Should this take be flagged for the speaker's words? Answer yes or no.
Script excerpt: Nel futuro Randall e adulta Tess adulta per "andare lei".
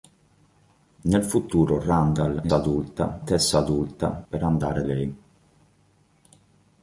no